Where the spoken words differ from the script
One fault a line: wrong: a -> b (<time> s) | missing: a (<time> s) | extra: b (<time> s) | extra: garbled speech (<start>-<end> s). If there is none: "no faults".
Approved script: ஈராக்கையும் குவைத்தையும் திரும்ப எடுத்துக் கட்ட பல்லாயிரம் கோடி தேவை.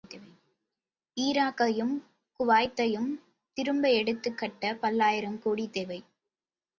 no faults